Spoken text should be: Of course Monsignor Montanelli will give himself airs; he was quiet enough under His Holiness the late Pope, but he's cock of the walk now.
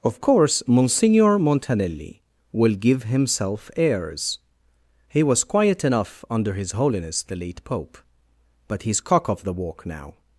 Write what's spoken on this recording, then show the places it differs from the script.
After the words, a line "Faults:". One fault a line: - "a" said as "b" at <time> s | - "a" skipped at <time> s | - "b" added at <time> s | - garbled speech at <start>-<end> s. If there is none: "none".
Of course Monsignor Montanelli will give himself airs; he was quiet enough under His Holiness the late Pope, but he's cock of the walk now.
Faults:
none